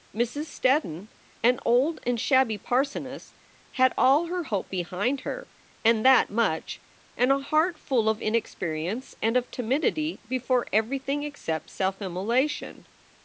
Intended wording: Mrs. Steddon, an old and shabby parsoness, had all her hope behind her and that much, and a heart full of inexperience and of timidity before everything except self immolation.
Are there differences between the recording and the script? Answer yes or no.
no